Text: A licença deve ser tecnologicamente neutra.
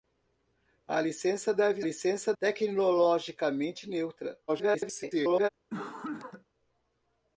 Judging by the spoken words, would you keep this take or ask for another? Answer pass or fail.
fail